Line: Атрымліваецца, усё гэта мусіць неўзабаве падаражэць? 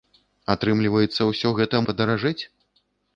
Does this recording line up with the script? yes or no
no